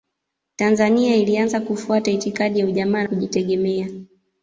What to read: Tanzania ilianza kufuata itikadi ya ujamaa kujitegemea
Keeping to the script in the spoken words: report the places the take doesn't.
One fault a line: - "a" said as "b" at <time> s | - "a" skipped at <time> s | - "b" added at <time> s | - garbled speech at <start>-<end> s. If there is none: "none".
none